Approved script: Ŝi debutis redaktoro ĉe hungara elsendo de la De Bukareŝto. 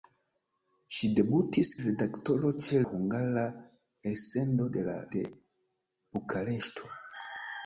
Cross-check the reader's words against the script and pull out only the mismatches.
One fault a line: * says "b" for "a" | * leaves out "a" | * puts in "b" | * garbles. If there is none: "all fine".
all fine